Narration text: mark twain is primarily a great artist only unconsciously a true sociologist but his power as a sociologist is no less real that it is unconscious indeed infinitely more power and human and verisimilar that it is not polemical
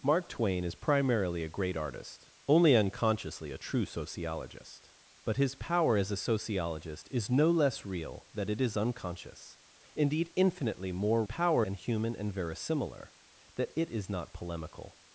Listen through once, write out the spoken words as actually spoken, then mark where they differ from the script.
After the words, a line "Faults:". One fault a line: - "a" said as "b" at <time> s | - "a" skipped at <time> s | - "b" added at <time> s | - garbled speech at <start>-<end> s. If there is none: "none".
mark twain is primarily a great artist only unconsciously a true sociologist but his power as a sociologist is no less real that it is unconscious indeed infinitely more power and human and verisimilar that it is not polemical
Faults:
none